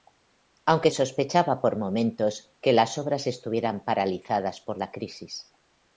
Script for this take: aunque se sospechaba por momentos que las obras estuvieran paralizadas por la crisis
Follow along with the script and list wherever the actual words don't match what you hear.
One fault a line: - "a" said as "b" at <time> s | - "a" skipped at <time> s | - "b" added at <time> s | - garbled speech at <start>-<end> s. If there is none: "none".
- "se" skipped at 0.9 s